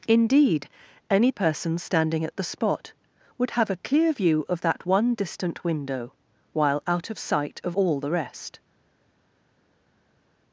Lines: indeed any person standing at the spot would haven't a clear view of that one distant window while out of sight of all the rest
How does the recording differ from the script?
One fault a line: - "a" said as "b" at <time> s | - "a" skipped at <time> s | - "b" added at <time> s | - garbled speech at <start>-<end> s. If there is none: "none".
- "haven't" said as "have" at 3.5 s